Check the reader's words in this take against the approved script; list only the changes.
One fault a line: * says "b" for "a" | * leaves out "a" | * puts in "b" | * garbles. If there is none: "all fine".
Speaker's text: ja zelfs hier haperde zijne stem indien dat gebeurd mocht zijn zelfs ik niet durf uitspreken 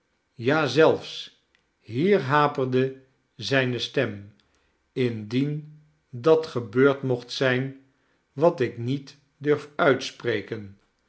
* says "wat" for "zelfs"